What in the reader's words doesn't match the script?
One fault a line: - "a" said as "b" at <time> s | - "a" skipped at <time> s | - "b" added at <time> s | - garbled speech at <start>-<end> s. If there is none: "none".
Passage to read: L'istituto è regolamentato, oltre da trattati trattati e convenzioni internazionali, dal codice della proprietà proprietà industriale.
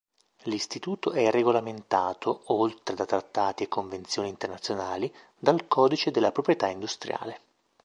- "trattati" skipped at 3.6 s
- "proprietà" skipped at 6.7 s